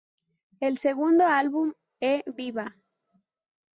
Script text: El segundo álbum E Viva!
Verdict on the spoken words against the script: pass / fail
pass